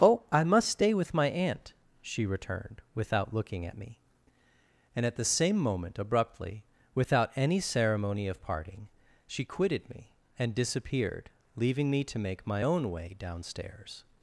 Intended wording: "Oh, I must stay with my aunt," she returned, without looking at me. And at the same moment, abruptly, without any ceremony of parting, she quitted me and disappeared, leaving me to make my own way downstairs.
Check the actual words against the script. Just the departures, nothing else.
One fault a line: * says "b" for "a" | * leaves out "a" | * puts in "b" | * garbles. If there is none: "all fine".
all fine